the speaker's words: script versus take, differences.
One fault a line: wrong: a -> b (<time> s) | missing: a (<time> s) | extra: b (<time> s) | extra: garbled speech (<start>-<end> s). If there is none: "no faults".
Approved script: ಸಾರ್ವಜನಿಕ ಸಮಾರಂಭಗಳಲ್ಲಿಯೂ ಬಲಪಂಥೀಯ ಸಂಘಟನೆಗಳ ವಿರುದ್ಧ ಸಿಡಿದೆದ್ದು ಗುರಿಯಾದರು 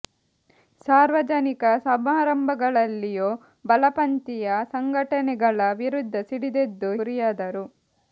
no faults